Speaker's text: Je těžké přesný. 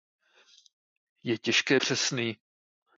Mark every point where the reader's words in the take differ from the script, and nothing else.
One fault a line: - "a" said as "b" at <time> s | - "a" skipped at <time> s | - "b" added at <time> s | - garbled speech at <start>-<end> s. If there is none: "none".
none